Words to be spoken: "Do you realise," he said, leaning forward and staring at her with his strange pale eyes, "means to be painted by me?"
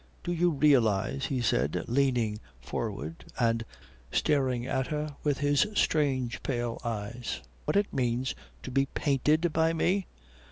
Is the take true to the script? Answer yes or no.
no